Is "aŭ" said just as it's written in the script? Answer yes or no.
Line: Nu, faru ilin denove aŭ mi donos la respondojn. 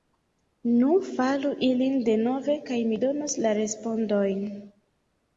no